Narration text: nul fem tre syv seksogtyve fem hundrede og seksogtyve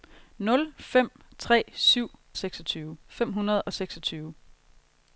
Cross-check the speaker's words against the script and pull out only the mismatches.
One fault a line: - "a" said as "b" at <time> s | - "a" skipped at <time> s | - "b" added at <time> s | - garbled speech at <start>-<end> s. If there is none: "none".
none